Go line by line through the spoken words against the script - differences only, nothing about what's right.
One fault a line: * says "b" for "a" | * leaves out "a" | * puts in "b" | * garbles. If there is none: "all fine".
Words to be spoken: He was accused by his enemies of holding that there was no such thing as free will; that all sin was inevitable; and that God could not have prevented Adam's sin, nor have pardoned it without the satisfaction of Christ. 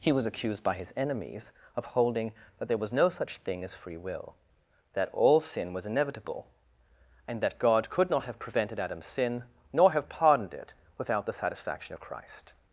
all fine